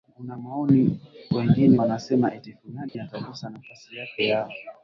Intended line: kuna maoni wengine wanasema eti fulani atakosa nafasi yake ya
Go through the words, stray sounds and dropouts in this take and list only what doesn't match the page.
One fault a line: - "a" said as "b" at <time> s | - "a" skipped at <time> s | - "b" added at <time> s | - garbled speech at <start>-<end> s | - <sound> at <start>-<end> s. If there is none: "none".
- dropout at 2.9-2.9 s